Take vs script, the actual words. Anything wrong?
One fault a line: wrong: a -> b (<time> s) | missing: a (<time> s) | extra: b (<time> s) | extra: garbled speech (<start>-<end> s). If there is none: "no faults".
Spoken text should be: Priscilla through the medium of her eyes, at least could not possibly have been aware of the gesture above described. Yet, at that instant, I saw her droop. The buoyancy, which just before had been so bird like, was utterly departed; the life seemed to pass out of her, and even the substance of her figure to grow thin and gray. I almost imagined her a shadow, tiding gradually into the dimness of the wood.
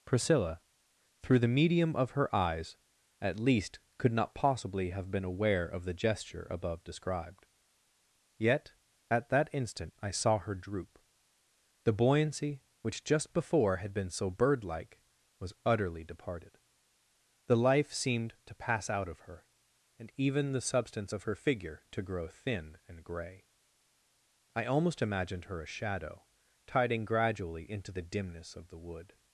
no faults